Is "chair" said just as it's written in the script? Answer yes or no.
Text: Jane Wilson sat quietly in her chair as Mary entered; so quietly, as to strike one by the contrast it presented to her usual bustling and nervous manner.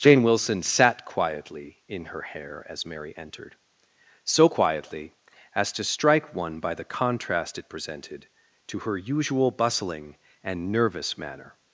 no